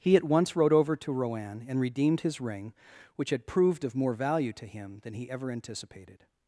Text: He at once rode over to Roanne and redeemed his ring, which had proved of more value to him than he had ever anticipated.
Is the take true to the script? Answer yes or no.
no